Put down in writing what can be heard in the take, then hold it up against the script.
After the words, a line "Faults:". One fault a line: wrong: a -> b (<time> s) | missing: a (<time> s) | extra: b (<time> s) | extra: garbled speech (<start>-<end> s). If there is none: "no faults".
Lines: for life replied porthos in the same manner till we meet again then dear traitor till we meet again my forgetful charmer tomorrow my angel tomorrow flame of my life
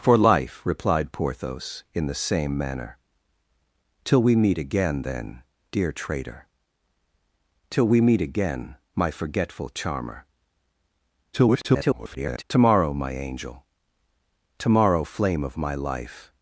for life replied porthos in the same manner till we meet again then dear traitor till we meet again my forgetful charmer [garbled] tomorrow my angel tomorrow flame of my life
Faults:
extra: garbled speech (11.3-12.4 s)